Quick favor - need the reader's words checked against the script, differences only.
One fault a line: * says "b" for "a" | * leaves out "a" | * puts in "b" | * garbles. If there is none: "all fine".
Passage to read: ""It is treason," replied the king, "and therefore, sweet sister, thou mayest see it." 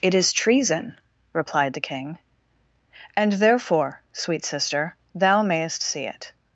all fine